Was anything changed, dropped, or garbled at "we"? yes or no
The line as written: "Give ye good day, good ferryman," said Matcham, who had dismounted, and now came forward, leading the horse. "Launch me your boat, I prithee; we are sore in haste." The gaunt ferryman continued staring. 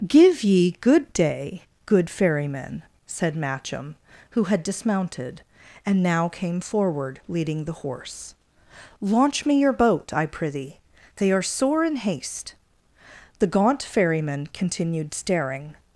yes